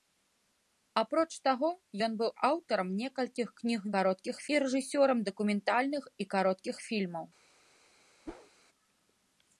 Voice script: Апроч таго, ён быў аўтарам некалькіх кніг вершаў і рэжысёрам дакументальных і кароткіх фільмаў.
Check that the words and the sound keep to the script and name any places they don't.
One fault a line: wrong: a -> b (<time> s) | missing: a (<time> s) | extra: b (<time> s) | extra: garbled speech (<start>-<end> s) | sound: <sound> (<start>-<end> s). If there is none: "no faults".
wrong: вершаў -> кароткіх (4.0 s)
sound: whoosh (8.3-8.5 s)